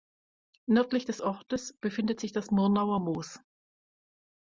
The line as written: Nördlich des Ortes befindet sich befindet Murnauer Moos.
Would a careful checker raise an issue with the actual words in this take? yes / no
yes